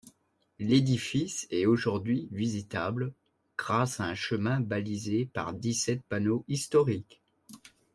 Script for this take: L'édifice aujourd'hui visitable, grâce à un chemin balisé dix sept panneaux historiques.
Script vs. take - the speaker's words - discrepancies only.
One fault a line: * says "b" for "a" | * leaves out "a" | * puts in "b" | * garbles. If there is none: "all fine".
* puts in "est"
* puts in "par"